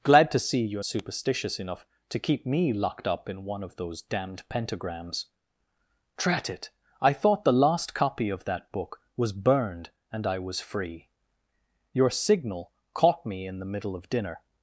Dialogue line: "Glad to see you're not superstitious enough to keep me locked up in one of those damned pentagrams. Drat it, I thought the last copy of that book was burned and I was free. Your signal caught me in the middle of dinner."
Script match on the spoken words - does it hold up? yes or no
no